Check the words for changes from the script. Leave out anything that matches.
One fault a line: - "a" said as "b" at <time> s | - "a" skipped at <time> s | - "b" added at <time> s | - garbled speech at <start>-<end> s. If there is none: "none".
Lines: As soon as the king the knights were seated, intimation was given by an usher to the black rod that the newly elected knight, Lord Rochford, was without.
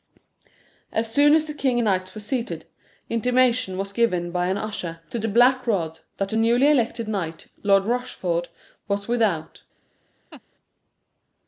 none